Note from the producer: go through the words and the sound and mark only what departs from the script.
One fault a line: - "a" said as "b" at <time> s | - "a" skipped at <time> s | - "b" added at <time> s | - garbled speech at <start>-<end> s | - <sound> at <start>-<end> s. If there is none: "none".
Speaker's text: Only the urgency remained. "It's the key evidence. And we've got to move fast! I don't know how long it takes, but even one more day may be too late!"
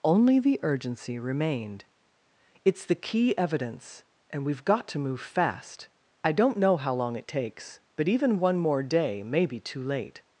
none